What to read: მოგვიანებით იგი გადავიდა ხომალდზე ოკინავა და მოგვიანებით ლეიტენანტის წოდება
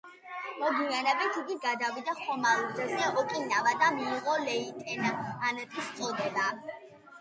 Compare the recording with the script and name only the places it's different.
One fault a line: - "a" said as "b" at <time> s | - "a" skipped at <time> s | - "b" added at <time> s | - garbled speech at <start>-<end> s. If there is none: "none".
- "მოგვიანებით" said as "მიიღო" at 4.0 s